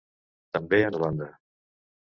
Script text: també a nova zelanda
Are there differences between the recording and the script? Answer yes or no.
yes